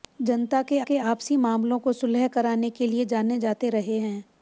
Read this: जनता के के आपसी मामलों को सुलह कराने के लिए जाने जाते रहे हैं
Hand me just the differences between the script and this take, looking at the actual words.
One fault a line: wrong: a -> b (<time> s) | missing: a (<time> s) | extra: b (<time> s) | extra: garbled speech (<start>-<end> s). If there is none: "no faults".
no faults